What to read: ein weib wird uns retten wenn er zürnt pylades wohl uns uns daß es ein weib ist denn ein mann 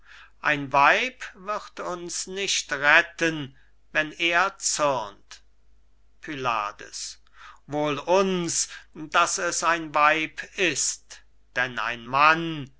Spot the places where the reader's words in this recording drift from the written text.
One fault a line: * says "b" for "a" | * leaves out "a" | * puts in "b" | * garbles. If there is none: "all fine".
* puts in "nicht"
* leaves out "uns"